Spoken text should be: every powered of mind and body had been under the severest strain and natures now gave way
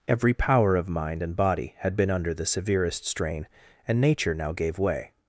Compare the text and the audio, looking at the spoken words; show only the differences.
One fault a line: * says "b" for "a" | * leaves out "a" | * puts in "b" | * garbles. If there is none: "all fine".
* says "power" for "powered"
* says "nature" for "natures"